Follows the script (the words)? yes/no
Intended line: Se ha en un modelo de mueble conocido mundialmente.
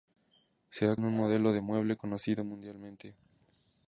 yes